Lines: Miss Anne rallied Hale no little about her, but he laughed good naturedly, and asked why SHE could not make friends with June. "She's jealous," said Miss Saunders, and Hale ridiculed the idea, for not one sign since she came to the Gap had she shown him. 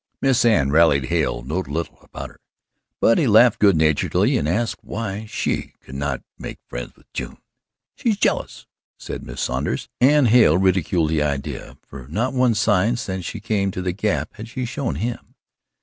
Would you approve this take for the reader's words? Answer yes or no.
yes